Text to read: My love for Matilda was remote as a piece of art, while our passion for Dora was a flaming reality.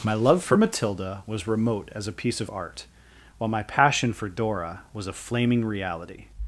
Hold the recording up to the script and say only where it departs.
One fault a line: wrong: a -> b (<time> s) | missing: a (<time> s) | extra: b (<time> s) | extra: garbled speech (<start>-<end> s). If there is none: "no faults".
wrong: our -> my (3.5 s)